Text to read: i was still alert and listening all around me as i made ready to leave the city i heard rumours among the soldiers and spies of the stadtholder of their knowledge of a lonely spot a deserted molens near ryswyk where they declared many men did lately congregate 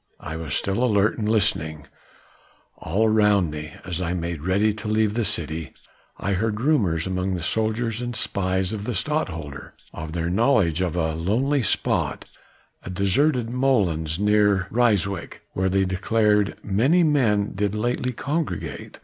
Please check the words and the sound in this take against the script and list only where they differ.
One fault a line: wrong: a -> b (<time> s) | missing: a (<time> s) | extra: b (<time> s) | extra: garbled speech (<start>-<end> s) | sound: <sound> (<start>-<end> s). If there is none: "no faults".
no faults